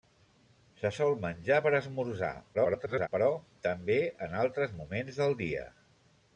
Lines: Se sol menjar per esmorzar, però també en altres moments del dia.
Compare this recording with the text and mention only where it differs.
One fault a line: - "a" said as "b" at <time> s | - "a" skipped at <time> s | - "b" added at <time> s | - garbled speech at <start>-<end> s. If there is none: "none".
- garbled speech at 2.5-3.1 s